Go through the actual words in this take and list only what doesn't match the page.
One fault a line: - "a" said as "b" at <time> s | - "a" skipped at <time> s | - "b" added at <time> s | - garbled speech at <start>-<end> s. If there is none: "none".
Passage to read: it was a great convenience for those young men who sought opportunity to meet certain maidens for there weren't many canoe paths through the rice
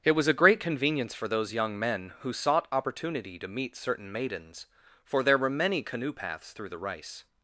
- "weren't" said as "were" at 5.4 s